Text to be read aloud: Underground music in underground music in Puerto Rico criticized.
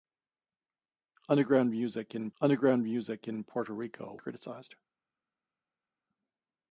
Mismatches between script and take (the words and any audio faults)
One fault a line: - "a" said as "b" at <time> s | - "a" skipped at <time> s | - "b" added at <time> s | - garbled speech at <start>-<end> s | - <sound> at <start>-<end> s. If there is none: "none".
none